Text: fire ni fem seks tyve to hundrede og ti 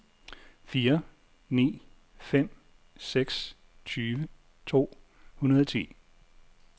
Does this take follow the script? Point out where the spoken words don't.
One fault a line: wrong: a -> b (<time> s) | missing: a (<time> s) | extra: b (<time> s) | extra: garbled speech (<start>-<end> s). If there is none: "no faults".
no faults